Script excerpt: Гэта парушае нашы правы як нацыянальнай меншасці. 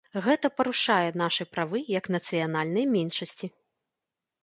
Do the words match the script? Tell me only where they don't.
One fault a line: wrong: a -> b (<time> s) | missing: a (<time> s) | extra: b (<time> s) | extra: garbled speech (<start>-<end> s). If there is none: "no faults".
no faults